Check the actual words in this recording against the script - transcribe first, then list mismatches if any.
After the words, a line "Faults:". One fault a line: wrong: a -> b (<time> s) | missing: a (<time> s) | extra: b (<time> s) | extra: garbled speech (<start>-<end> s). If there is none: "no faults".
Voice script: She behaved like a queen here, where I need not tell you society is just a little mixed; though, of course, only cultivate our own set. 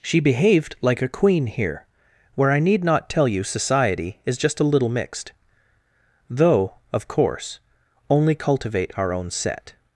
She behaved like a queen here, where I need not tell you society is just a little mixed; though, of course, only cultivate our own set.
Faults:
no faults